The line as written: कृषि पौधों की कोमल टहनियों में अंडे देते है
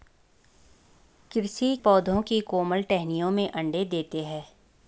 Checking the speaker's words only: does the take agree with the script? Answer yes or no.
yes